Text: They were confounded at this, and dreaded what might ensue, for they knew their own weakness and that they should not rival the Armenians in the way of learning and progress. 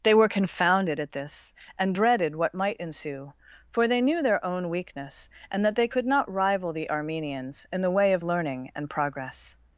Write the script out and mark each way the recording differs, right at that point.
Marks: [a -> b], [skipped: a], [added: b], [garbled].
They were confounded at this, and dreaded what might ensue, for they knew their own weakness and that they [should -> could] not rival the Armenians in the way of learning and progress.